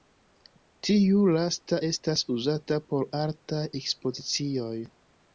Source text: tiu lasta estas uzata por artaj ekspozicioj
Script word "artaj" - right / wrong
right